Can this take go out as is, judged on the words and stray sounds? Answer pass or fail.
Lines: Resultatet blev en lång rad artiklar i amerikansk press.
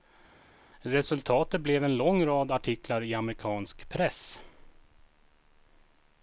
pass